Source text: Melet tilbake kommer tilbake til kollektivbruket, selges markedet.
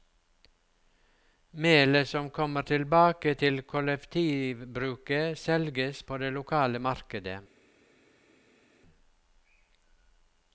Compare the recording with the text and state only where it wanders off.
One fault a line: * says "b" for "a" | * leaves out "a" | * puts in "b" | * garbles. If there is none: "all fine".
* says "som" for "tilbake"
* puts in "på det lokale"